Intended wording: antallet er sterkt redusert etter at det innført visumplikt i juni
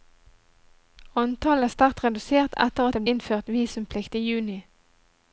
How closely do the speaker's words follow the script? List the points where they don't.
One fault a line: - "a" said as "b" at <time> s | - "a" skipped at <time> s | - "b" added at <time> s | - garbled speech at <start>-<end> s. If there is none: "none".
none